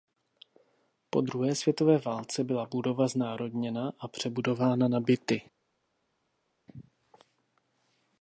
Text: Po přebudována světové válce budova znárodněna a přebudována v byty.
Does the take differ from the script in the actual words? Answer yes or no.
yes